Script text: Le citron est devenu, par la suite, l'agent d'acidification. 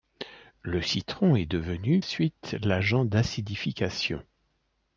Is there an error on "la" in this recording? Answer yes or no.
yes